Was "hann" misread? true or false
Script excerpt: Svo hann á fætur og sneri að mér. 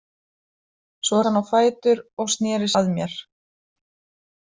false